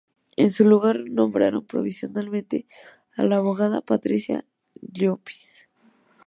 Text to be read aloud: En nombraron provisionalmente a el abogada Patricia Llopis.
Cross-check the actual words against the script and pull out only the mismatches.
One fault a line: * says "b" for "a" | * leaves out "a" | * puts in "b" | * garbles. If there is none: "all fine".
* puts in "su lugar"
* says "la" for "el"